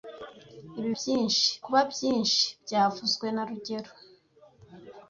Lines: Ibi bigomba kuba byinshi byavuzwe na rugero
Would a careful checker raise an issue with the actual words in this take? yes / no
yes